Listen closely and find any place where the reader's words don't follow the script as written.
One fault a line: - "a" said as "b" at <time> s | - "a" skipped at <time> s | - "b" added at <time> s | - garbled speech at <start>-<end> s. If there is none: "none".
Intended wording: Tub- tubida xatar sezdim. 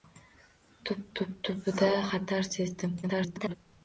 - "tub" added at 1.2 s
- garbled speech at 3.0-3.5 s